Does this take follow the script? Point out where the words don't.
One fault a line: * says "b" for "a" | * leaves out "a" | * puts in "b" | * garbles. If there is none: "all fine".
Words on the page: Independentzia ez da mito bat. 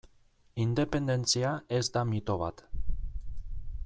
all fine